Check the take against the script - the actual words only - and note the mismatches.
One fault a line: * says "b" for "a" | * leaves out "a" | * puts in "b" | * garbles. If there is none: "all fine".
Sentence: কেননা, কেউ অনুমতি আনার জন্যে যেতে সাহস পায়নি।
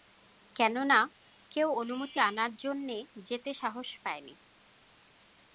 all fine